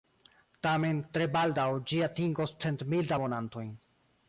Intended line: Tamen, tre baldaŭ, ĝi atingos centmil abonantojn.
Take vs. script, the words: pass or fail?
pass